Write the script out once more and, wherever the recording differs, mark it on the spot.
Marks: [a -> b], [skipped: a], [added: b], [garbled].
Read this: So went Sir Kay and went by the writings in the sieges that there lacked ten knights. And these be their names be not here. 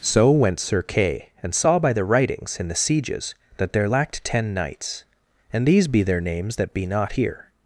So went Sir Kay and [went -> saw] by the writings in the sieges that there lacked ten knights. And these be their names [added: that] be not here.